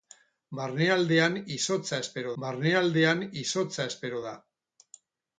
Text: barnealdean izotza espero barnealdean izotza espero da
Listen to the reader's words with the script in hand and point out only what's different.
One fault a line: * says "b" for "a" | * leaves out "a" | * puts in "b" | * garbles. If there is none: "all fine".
all fine